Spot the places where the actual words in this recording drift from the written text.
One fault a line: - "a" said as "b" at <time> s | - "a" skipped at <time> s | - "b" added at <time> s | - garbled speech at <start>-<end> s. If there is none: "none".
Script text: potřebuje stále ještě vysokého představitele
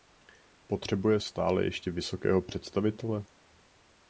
none